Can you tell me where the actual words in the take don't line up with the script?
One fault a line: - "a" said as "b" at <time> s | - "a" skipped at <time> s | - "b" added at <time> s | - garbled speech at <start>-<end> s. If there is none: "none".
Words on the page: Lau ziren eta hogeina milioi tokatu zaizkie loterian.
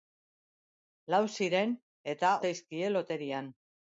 - "hogeina milioi tokatu" skipped at 2.3 s